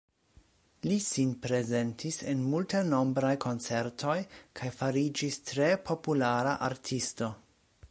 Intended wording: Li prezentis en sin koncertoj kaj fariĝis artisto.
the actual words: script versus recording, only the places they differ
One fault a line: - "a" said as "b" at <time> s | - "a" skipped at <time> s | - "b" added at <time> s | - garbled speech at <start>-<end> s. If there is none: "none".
- "sin" added at 1.1 s
- "sin" said as "multenombraj" at 2.5 s
- "tre populara" added at 5.5 s